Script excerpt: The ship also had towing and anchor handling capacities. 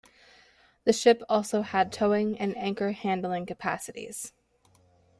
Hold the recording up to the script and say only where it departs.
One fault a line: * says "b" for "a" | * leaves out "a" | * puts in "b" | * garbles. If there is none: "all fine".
all fine